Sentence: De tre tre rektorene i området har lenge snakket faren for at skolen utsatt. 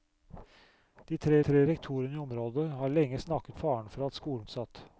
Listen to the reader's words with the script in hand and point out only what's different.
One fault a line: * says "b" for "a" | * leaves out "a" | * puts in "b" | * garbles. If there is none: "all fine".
all fine